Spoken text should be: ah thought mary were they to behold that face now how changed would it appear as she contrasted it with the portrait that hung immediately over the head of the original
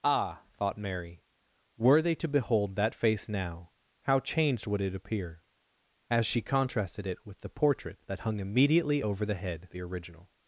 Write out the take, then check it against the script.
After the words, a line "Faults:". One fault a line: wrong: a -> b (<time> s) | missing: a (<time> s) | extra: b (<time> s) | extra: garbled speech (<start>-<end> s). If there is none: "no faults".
ah thought mary were they to behold that face now how changed would it appear as she contrasted it with the portrait that hung immediately over the head the original
Faults:
missing: of (9.7 s)